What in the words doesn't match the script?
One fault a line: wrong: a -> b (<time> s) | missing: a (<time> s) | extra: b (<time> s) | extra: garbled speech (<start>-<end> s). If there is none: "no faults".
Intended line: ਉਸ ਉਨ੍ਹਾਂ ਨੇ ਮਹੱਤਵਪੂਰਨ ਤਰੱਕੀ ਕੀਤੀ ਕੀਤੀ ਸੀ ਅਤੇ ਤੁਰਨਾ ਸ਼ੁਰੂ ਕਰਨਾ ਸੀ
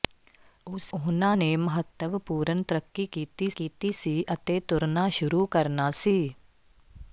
no faults